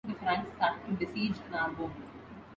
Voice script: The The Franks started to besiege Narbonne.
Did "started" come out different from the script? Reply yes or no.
no